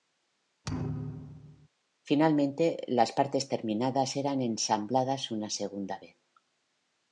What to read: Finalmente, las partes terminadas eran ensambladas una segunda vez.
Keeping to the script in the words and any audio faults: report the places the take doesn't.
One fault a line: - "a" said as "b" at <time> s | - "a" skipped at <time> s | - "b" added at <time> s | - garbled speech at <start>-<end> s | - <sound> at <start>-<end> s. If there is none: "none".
- thud at 0.6-1.7 s